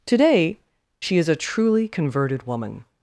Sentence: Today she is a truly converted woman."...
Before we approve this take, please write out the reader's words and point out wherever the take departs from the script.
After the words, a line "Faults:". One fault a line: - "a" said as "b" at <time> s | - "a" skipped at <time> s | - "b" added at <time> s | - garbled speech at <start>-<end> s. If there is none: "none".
Today she is a truly converted woman."...
Faults:
none